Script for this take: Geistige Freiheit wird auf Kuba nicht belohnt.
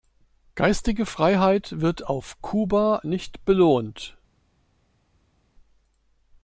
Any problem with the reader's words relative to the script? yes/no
no